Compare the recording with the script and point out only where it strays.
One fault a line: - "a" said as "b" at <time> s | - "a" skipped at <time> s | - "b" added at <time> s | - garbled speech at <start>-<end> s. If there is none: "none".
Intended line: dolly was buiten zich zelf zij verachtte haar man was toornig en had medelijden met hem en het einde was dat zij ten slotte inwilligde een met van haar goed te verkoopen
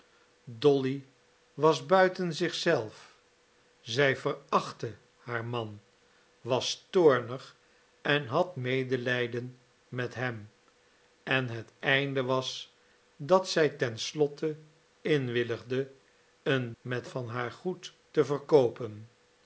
none